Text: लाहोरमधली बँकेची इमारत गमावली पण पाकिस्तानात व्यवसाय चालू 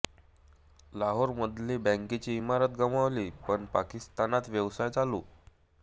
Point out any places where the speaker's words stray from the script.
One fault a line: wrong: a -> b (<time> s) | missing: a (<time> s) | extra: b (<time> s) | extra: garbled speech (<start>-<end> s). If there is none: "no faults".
no faults